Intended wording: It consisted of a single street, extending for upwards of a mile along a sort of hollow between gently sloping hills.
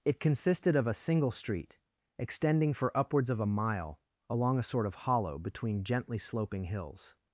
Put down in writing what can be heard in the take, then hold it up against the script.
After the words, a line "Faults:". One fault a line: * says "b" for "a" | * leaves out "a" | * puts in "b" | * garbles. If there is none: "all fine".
It consisted of a single street, extending for upwards of a mile along a sort of hollow between gently sloping hills.
Faults:
all fine